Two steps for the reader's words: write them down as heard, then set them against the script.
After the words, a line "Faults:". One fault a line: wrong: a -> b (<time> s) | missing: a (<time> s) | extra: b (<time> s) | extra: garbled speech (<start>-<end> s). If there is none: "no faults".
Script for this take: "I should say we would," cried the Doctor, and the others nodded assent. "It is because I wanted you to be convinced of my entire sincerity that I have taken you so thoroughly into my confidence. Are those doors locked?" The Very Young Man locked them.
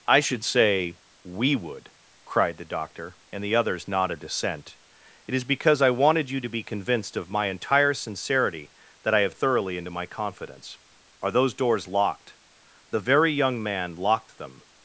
"I should say we would," cried the Doctor, and the others nodded assent. "It is because I wanted you to be convinced of my entire sincerity that I have thoroughly into my confidence. Are those doors locked?" The Very Young Man locked them.
Faults:
missing: taken you so (9.3 s)